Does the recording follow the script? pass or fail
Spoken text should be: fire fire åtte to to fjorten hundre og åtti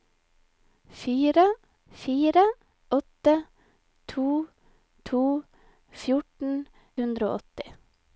pass